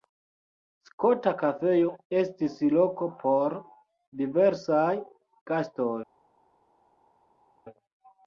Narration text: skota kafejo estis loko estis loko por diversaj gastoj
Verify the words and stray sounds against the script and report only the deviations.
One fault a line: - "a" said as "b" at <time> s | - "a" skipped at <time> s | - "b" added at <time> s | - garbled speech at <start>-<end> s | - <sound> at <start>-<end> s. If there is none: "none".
- "estis loko" skipped at 3.1 s